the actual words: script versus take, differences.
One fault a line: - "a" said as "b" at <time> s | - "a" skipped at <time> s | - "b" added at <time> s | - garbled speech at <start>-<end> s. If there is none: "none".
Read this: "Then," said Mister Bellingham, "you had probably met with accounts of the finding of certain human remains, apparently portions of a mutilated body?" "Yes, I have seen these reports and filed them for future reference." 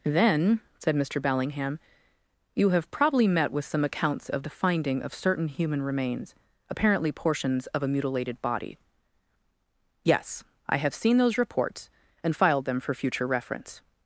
- "had" said as "have" at 2.7 s
- "some" added at 3.6 s
- "these" said as "those" at 11.2 s